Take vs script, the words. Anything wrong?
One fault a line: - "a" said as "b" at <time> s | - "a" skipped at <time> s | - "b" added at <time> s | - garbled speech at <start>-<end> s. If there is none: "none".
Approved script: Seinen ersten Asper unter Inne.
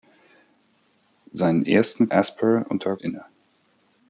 none